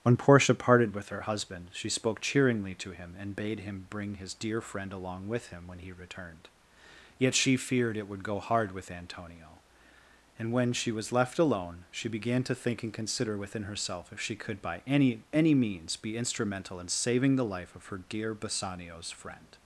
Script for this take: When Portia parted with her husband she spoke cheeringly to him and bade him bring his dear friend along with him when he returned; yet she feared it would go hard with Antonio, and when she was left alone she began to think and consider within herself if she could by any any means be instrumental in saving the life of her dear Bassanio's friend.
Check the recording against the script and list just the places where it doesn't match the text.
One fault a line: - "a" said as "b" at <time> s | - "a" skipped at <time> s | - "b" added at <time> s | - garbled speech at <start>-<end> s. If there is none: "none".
none